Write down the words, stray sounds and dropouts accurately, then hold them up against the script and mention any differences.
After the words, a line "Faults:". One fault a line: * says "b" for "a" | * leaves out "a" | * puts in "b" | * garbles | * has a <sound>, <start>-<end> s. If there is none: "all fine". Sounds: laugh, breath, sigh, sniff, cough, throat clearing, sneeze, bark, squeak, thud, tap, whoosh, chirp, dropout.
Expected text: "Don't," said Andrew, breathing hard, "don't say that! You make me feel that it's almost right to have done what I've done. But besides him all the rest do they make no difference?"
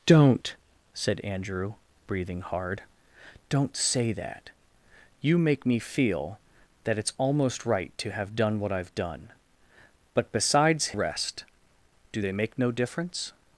"Don't," said Andrew, breathing hard, "don't say that! You make me feel that it's almost right to have done what I've done. But besides rest do they make no difference?"
Faults:
* leaves out "him all the"